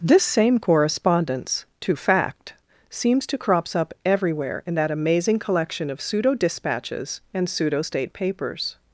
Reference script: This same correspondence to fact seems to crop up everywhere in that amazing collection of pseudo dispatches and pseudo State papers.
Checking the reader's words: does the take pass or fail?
fail